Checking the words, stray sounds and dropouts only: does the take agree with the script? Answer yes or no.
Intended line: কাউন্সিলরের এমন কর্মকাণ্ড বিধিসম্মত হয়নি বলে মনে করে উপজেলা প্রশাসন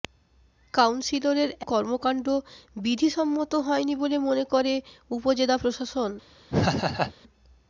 no